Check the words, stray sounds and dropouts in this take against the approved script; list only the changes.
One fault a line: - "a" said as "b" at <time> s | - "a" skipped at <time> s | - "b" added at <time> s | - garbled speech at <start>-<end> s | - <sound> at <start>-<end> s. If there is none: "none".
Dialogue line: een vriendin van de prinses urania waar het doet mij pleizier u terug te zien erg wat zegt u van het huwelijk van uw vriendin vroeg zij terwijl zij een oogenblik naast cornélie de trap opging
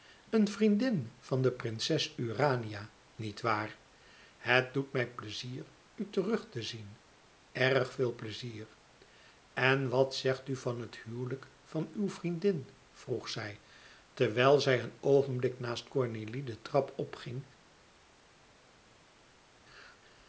- "niet" added at 3.1 s
- "veel pleizier en" added at 7.9 s